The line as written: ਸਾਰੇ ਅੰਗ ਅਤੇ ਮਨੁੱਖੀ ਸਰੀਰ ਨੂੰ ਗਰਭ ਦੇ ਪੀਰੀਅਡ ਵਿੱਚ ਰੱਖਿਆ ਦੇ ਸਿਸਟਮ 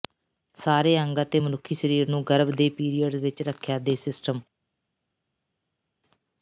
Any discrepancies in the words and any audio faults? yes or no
no